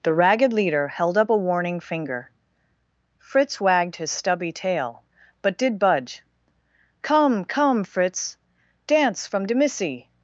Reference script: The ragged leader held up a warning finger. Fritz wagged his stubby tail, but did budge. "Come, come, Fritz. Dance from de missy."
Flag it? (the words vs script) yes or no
no